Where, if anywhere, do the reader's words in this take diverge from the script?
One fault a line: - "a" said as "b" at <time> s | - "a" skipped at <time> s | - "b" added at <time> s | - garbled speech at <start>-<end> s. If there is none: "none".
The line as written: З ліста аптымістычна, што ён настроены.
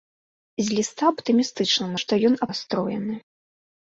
none